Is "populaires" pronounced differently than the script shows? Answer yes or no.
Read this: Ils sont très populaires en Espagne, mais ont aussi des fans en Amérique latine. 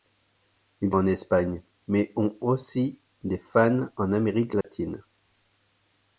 yes